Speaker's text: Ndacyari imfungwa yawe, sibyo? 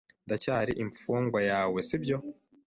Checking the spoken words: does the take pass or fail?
pass